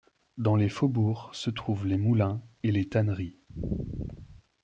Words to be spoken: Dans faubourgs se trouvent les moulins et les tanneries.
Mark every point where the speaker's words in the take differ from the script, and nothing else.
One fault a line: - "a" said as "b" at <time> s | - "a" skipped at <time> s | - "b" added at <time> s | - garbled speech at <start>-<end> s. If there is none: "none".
- "les" added at 0.6 s